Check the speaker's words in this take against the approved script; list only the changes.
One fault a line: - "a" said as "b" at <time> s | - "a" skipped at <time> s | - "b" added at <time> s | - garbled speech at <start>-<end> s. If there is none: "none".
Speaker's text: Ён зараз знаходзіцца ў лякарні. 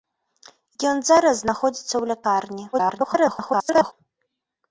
- garbled speech at 2.7-3.9 s